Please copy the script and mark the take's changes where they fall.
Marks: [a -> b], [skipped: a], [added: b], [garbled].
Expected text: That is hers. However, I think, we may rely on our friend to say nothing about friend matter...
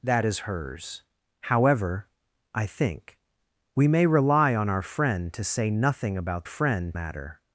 That is hers. However, I think, we may rely on our friend to say nothing about friend matter...